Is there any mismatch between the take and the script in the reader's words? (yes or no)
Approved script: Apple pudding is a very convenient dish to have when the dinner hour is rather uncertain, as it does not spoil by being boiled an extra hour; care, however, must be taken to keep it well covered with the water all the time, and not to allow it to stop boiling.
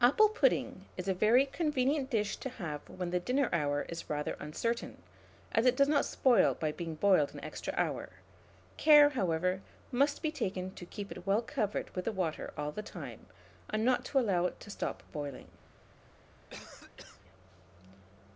no